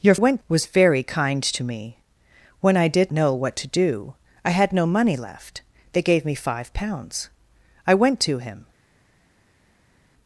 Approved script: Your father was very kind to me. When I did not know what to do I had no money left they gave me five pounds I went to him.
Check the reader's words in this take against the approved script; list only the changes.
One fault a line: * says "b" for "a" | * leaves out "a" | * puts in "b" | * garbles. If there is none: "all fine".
* says "went" for "father"
* leaves out "not"